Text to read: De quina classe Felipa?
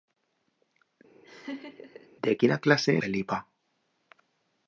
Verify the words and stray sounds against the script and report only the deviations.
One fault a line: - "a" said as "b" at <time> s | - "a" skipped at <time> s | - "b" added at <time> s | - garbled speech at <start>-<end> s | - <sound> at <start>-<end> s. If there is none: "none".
- laugh at 1.2-2.1 s